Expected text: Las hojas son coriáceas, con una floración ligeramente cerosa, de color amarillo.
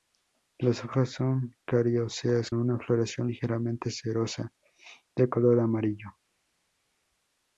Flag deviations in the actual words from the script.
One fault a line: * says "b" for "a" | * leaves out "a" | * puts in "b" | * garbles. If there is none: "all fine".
* leaves out "con"